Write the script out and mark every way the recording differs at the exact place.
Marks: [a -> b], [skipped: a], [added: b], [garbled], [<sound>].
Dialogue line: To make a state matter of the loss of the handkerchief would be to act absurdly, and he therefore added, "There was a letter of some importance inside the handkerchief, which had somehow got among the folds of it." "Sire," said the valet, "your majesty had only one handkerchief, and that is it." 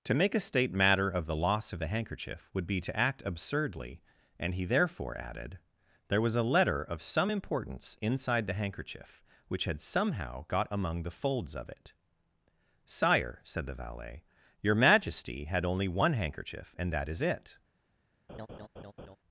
To make a state matter of the loss of the handkerchief would be to act absurdly, and he therefore added, "There was a letter of some importance inside the handkerchief, which had somehow got among the folds of it." "Sire," said the valet, "your majesty had only one handkerchief, and that is it." [laugh]